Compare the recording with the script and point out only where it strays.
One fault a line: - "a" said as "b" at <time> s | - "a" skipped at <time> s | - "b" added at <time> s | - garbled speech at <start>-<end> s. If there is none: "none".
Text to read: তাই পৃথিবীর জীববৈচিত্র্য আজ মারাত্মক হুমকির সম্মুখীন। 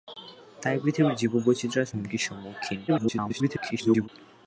- "মারাত্মক" skipped at 1.9 s
- garbled speech at 2.9-4.1 s